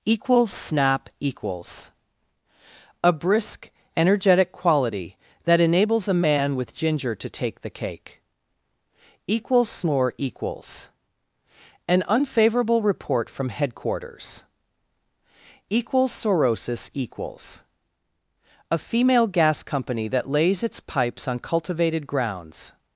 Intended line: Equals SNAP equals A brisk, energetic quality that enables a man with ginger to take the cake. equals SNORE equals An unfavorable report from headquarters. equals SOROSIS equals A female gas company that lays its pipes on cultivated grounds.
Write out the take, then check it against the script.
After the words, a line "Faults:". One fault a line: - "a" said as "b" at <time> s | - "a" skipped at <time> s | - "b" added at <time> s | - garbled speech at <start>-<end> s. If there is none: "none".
Equals SNAP equals A brisk, energetic quality that enables a man with ginger to take the cake. equals SNORE equals An unfavorable report from headquarters. equals SOROSIS equals A female gas company that lays its pipes on cultivated grounds.
Faults:
none